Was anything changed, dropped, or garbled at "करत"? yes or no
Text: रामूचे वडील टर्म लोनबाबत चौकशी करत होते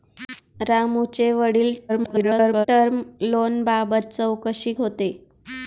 yes